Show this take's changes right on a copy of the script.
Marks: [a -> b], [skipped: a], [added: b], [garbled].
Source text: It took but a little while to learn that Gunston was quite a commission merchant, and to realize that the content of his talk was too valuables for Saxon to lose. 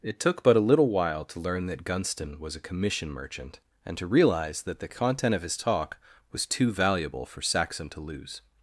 It took but a little while to learn that Gunston was [skipped: quite] a commission merchant, and to realize that the content of his talk was too [valuables -> valuable] for Saxon to lose.